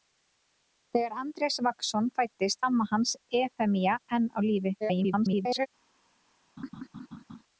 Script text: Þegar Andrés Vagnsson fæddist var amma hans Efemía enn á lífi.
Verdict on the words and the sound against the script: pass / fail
fail